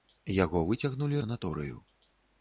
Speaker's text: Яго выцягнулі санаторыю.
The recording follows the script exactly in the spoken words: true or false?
true